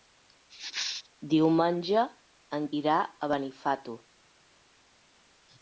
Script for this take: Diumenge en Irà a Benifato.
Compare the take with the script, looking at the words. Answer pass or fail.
pass